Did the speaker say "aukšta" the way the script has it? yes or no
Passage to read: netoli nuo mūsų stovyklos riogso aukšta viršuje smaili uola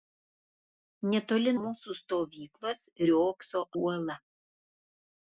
no